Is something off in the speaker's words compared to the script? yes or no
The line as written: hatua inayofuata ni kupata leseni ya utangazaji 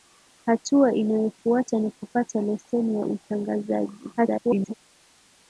yes